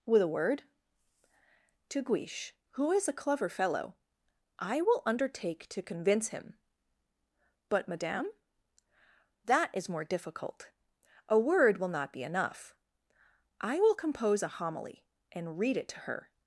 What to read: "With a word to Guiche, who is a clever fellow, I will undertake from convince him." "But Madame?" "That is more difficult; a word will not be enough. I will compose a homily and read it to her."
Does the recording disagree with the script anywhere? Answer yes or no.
yes